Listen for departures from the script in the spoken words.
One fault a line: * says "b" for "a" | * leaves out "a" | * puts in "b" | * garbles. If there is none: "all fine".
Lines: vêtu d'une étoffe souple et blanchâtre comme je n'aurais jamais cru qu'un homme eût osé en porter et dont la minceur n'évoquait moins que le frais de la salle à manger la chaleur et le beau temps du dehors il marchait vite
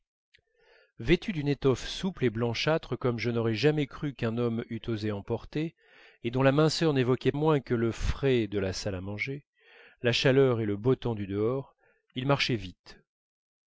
all fine